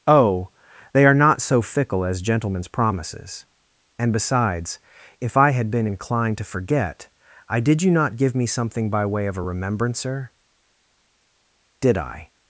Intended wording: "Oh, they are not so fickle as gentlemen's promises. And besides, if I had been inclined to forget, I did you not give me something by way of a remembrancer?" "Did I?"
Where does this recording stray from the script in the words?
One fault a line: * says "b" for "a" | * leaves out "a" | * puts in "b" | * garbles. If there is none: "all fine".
all fine